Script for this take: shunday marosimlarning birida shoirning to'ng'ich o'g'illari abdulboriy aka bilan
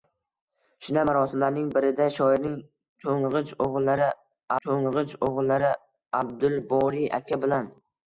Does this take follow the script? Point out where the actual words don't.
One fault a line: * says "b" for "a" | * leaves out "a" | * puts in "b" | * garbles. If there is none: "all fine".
* puts in "to'ng'ich o'g'illari"